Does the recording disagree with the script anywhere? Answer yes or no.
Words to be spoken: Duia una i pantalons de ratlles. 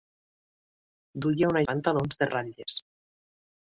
no